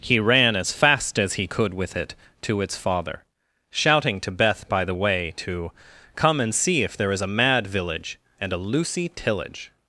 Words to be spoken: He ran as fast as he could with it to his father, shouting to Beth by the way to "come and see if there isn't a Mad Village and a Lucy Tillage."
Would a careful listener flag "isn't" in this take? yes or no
yes